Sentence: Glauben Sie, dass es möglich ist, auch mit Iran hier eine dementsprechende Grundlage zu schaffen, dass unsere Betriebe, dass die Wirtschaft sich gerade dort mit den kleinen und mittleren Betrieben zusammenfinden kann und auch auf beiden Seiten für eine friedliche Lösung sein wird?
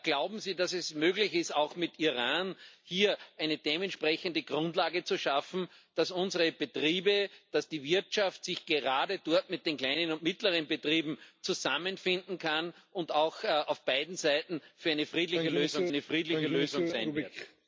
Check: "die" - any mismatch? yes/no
no